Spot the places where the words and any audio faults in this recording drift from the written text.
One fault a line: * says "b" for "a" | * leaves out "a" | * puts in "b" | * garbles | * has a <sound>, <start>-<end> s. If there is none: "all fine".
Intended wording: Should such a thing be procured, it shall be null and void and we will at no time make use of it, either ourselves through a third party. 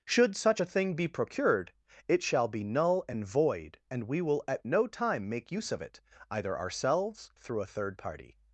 all fine